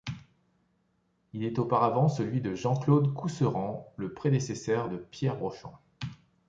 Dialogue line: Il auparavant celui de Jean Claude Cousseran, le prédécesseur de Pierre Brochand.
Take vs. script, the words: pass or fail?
fail